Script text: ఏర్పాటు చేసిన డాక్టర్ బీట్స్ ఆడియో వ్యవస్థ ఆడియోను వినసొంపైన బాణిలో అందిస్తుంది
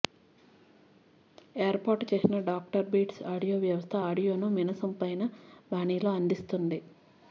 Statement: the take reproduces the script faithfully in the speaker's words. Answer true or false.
true